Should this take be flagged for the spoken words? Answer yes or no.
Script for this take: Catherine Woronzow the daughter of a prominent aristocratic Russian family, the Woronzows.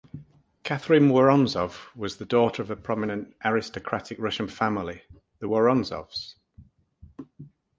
yes